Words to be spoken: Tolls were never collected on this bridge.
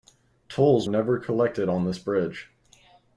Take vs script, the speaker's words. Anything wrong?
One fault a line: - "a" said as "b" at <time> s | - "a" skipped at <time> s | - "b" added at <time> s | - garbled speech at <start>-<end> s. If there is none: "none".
- "were" skipped at 0.9 s